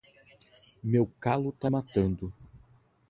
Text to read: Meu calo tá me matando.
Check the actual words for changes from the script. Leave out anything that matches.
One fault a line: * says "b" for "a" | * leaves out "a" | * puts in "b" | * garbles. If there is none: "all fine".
* leaves out "me"